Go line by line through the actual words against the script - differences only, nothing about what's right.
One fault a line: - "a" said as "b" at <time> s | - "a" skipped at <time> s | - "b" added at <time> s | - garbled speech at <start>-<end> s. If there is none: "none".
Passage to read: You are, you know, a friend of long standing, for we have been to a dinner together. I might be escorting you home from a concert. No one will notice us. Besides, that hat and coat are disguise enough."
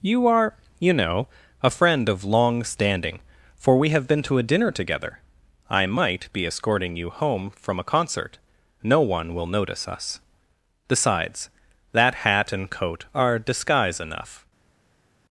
none